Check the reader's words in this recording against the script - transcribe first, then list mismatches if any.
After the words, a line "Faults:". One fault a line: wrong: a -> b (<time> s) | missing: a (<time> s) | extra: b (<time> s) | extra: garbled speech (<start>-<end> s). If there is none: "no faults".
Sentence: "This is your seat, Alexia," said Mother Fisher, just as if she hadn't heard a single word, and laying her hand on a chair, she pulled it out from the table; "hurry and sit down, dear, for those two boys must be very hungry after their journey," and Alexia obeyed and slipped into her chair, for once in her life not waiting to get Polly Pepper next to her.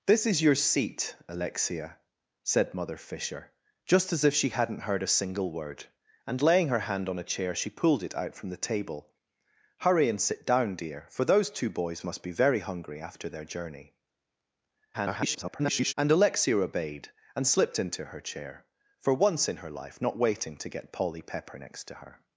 "This is your seat, Alexia," said Mother Fisher, just as if she hadn't heard a single word, and laying her hand on a chair, she pulled it out from the table; "hurry and sit down, dear, for those two boys must be very hungry after their journey," [garbled] and Alexia obeyed and slipped into her chair, for once in her life not waiting to get Polly Pepper next to her.
Faults:
extra: garbled speech (14.9-15.9 s)